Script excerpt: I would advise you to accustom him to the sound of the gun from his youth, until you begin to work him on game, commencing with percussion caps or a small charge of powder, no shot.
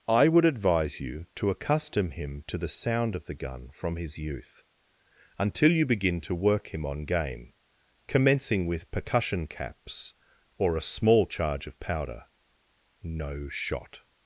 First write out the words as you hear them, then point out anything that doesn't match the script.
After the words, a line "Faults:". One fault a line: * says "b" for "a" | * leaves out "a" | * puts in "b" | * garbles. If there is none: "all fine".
I would advise you to accustom him to the sound of the gun from his youth, until you begin to work him on game, commencing with percussion caps or a small charge of powder, no shot.
Faults:
all fine